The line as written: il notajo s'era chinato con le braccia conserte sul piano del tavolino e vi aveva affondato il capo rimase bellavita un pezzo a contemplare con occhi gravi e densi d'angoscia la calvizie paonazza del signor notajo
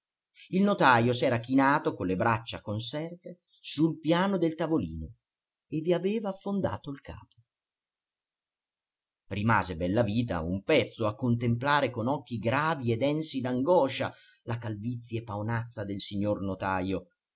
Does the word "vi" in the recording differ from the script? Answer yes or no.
no